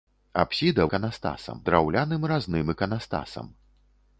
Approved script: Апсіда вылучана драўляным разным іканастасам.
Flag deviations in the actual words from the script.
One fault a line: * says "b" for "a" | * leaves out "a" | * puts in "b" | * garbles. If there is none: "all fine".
* says "іканастасам" for "вылучана"